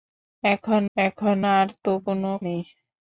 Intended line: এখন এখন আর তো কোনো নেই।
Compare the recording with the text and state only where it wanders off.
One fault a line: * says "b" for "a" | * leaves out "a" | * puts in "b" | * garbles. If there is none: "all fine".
all fine